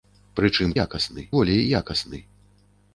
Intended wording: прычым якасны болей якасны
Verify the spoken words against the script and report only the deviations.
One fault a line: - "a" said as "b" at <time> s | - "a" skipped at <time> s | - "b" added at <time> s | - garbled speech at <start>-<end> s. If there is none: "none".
none